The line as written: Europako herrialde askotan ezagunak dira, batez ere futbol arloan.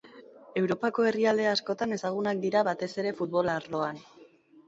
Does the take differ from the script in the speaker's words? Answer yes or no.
no